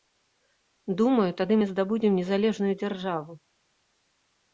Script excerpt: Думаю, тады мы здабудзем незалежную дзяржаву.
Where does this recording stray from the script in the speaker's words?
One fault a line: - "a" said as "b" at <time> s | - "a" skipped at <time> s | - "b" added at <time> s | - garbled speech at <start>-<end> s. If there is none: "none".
none